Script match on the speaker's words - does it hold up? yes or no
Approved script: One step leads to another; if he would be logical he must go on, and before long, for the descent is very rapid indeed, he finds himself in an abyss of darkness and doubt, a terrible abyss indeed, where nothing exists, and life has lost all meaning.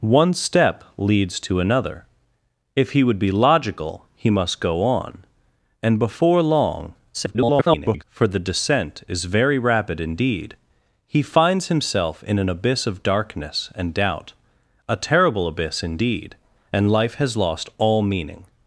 no